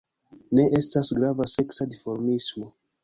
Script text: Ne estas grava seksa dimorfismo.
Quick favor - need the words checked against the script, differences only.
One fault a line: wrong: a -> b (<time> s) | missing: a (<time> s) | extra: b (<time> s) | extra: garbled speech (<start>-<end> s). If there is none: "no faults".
no faults